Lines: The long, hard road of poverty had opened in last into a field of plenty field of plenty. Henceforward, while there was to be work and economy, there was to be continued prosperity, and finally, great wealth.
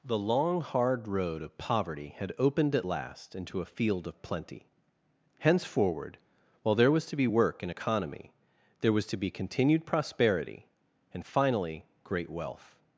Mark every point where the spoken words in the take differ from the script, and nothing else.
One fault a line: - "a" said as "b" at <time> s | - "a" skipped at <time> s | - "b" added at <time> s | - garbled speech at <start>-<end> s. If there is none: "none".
- "in" said as "at" at 2.7 s
- "field of plenty" skipped at 4.7 s